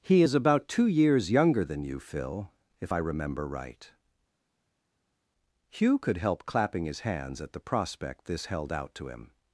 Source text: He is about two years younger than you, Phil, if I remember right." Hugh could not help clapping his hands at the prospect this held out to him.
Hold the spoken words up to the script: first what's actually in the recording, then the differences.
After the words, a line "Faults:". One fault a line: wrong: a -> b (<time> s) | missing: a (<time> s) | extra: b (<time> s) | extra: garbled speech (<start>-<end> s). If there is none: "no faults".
He is about two years younger than you, Phil, if I remember right." Hugh could help clapping his hands at the prospect this held out to him.
Faults:
missing: not (6.2 s)